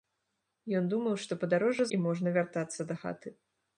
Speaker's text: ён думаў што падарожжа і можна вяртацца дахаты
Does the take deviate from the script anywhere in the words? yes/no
no